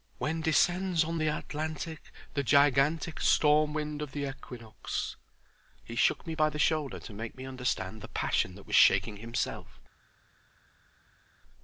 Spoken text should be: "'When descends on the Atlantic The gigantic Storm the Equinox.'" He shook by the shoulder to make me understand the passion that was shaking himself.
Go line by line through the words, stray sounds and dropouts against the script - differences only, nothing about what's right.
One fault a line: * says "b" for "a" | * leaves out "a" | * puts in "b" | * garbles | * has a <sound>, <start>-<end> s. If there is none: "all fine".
* puts in "wind of"
* puts in "me"